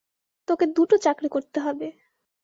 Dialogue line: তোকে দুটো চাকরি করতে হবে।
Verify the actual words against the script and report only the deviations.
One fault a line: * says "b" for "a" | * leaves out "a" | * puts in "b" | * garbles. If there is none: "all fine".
all fine